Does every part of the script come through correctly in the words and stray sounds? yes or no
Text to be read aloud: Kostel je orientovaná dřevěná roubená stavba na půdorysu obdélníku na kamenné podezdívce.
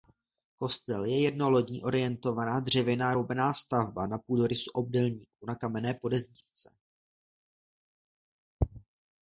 no